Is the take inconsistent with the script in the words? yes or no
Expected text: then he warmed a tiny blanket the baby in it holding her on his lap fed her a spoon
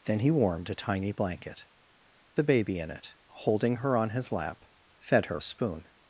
no